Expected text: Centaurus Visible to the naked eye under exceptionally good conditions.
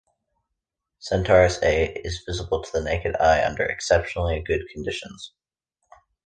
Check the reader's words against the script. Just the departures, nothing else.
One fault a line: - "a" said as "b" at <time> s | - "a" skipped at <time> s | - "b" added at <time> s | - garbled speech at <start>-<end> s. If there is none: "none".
- "A is" added at 1.6 s